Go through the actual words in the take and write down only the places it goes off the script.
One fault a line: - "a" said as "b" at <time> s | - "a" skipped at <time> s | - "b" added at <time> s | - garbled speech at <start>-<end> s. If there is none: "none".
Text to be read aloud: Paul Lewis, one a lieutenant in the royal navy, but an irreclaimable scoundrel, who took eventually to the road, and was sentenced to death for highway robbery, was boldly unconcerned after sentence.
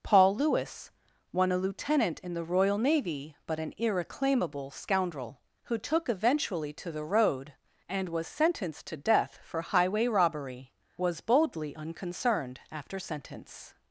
none